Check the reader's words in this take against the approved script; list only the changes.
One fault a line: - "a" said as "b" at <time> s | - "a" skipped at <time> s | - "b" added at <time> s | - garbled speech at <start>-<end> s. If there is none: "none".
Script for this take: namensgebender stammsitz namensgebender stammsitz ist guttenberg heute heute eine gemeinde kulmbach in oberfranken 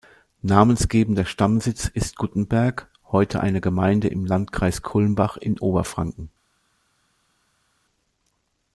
- "namensgebender stammsitz" skipped at 1.9 s
- "heute" skipped at 3.4 s
- "im landkreis" added at 4.1 s